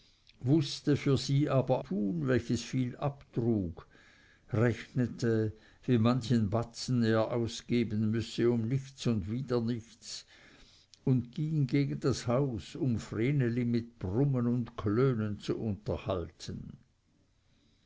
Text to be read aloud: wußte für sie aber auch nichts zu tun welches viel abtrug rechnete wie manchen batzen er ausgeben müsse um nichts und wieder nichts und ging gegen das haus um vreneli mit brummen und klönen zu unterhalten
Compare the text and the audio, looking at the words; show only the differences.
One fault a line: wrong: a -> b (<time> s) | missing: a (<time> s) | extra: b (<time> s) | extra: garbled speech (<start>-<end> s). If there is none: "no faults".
missing: auch nichts zu (1.8 s)